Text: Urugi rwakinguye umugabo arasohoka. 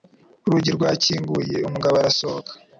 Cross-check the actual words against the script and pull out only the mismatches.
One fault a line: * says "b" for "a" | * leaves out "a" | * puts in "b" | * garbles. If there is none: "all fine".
all fine